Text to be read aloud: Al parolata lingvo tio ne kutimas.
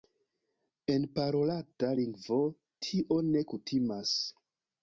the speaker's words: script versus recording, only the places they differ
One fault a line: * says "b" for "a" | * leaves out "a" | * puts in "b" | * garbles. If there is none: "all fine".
* says "En" for "Al"